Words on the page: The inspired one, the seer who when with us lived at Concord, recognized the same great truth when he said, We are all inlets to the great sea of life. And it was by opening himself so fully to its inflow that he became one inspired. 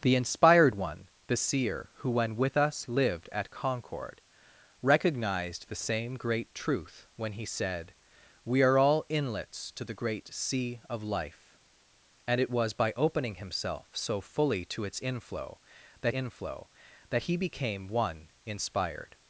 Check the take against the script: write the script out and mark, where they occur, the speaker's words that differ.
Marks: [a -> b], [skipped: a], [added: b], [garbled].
The inspired one, the seer who when with us lived at Concord, recognized the same great truth when he said, We are all inlets to the great sea of life. And it was by opening himself so fully to its inflow that [added: inflow that] he became one inspired.